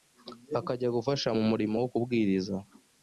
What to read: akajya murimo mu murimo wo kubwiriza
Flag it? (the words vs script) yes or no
yes